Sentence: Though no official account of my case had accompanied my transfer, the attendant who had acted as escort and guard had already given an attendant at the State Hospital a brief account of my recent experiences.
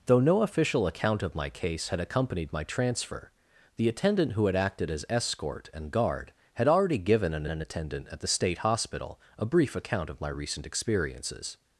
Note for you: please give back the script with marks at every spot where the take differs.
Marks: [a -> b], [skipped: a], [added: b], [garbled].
Though no official account of my case had accompanied my transfer, the attendant who had acted as escort and guard had already given an [added: an] attendant at the State Hospital a brief account of my recent experiences.